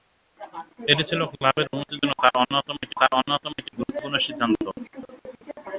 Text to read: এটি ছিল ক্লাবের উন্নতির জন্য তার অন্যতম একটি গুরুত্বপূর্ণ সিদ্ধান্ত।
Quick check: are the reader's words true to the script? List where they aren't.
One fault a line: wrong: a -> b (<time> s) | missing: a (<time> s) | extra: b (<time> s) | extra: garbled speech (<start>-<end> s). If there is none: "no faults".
extra: তার অন্যতম একটি (3.0 s)